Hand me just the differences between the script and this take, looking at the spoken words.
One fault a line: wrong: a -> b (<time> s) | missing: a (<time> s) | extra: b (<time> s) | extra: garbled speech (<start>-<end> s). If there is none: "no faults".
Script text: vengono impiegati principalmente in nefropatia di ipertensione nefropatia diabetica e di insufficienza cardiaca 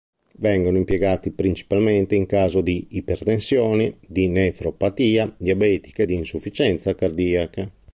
wrong: nefropatia -> caso (2.2 s)
extra: di (4.1 s)